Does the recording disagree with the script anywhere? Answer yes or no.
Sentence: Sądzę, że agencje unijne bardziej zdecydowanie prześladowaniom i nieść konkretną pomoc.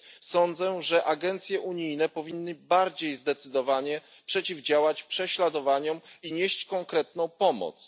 yes